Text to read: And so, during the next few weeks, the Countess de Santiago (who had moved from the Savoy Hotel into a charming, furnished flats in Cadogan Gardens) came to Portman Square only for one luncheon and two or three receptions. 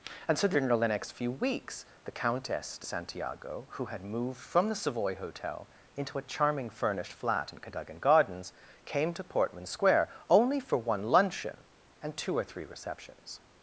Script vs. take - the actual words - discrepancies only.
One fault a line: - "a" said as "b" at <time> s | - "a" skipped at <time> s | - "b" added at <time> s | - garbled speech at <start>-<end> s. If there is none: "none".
- "flats" said as "flat" at 7.1 s